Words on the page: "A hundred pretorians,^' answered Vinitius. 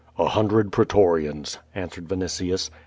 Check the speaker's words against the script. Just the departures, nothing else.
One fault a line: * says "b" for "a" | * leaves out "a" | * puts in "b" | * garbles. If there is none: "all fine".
all fine